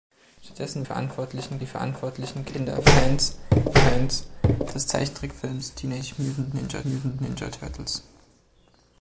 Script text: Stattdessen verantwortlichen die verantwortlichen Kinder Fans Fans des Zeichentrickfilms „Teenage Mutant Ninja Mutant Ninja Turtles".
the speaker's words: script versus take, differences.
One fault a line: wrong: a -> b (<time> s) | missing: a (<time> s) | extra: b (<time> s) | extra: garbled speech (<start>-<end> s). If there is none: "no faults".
no faults